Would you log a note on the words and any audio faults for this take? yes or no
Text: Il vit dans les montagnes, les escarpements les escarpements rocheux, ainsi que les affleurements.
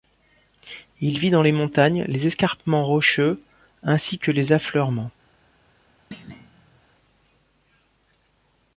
yes